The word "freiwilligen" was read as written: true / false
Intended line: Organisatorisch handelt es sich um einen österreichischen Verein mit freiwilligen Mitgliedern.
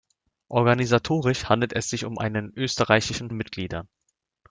false